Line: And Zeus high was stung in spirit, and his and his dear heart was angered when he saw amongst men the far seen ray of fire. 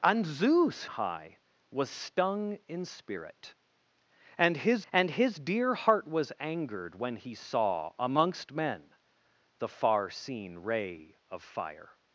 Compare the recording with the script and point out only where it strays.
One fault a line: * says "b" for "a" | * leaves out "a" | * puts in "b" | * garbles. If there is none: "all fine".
all fine